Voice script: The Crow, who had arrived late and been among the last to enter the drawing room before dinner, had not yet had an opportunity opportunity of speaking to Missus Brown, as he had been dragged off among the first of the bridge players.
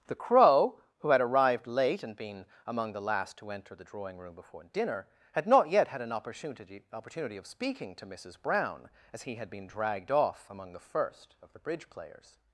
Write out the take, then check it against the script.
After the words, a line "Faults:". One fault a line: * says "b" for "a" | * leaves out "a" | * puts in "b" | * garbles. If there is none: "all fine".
The Crow, who had arrived late and been among the last to enter the drawing room before dinner, had not yet had an opportunity opportunity of speaking to Missus Brown, as he had been dragged off among the first of the bridge players.
Faults:
all fine